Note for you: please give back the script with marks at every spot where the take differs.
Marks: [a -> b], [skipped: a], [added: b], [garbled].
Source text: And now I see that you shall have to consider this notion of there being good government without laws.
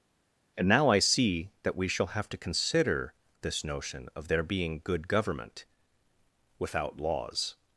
And now I see that [you -> we] shall have to consider this notion of there being good government without laws.